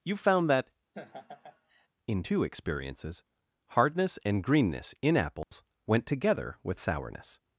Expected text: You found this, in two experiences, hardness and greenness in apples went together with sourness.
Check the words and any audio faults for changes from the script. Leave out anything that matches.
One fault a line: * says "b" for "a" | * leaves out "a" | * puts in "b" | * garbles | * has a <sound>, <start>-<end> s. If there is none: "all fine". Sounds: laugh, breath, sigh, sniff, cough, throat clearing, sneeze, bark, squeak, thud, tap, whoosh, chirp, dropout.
* says "that" for "this"
* has a laugh, 0.9-1.9 s
* has a dropout, 5.4-5.5 s